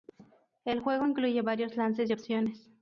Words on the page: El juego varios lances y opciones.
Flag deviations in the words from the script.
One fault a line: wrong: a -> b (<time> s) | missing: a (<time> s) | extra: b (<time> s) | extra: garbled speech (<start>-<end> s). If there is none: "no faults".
extra: incluye (1.0 s)